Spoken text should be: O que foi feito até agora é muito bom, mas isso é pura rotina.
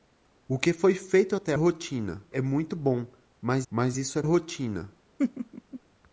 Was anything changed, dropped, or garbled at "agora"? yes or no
yes